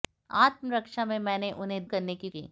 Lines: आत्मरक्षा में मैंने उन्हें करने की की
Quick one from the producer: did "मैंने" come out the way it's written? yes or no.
yes